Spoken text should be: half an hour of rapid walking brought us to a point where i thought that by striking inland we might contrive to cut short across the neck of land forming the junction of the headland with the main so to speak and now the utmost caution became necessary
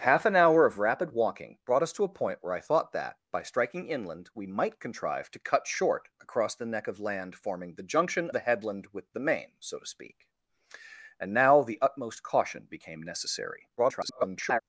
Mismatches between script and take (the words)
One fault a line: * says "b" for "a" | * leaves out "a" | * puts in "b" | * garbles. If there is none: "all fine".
* leaves out "of"
* garbles